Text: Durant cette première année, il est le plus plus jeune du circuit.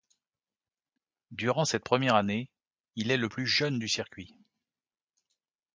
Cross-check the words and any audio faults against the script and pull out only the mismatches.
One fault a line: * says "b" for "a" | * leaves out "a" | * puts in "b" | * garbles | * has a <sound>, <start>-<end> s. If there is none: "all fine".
* leaves out "plus"